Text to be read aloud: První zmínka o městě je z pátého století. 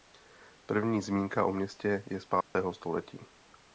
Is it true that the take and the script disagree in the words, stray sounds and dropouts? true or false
true